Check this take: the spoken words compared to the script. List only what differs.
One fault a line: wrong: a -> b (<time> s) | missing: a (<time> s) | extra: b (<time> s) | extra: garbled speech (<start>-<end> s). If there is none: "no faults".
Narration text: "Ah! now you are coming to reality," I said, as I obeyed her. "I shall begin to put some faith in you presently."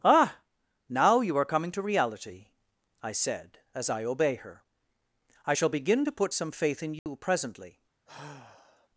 wrong: obeyed -> obey (4.0 s)